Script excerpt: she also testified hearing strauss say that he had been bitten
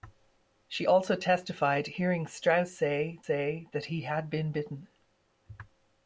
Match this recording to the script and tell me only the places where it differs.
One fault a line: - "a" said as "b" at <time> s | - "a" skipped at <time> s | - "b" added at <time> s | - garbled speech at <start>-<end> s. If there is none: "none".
- "say" added at 3.2 s